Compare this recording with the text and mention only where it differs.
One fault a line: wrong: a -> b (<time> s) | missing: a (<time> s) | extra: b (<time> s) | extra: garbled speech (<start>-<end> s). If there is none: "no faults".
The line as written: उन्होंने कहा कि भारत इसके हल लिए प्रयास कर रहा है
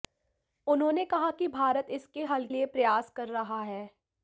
no faults